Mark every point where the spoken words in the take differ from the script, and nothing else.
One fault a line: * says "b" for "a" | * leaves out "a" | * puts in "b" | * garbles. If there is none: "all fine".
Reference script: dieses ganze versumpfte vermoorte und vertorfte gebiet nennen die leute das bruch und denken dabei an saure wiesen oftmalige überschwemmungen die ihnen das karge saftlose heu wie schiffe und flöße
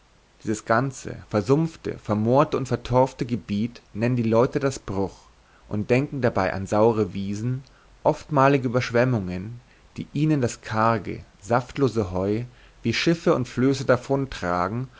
all fine